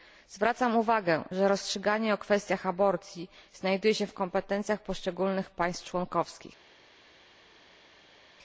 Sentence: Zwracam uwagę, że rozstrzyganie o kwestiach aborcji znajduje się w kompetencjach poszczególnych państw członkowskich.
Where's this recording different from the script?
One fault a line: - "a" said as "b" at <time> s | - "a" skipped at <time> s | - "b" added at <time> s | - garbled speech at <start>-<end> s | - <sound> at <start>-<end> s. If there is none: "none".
none